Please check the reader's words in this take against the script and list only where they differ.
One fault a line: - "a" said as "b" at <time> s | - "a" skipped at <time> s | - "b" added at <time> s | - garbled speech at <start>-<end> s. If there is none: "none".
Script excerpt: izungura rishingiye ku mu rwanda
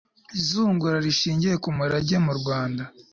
- "murage" added at 1.8 s